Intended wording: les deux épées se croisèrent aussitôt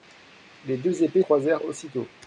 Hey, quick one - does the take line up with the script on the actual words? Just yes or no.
no